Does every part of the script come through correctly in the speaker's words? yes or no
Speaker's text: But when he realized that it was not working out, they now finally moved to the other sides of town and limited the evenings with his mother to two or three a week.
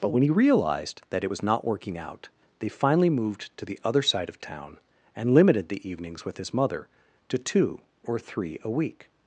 no